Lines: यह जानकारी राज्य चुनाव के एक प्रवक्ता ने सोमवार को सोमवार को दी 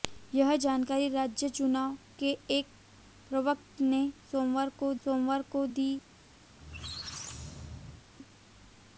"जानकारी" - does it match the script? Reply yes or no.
yes